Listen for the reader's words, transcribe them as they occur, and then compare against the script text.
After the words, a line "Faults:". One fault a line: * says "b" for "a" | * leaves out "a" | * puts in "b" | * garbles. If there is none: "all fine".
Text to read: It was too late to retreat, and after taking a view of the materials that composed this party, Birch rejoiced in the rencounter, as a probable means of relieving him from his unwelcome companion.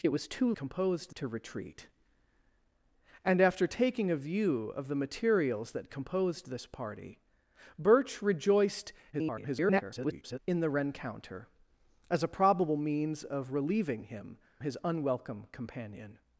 It was too composed to retreat, and after taking a view of the materials that composed this party, Birch rejoiced [garbled] in the rencounter, as a probable means of relieving him his unwelcome companion.
Faults:
* says "composed" for "late"
* garbles
* leaves out "from"